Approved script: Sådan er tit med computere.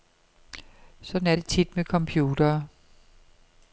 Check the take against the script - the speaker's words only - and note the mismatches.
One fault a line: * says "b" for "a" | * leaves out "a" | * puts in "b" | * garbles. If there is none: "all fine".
* puts in "det"